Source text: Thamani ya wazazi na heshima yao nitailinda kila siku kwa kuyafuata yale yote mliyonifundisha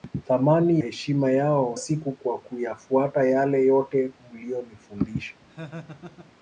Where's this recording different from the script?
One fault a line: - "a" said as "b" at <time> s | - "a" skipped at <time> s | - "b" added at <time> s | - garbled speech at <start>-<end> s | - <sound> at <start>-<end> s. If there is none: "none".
- "ya wazazi na" skipped at 0.8 s
- "nitailinda kila" skipped at 1.8 s
- laugh at 5.5-6.3 s